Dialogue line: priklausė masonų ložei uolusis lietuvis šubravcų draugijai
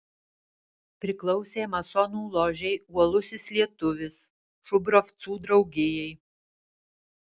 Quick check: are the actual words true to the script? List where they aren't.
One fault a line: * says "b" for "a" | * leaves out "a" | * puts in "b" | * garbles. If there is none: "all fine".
all fine